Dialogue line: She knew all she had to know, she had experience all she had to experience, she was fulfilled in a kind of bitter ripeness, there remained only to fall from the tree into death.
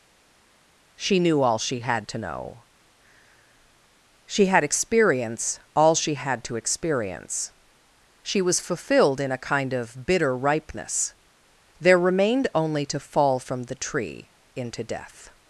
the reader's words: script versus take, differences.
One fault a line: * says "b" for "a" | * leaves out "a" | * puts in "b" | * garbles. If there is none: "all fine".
all fine